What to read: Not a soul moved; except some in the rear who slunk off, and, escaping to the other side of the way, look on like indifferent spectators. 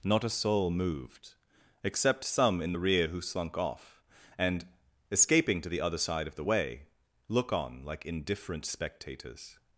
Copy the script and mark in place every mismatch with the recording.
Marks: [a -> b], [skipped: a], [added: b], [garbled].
Not a soul moved; except some in the rear who slunk off, and, escaping to the other side of the way, look on like indifferent spectators.